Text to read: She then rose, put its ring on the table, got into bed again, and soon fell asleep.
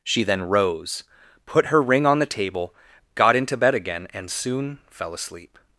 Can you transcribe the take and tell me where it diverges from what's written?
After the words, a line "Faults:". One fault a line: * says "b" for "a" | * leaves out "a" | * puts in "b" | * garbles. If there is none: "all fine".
She then rose, put her ring on the table, got into bed again, and soon fell asleep.
Faults:
* says "her" for "its"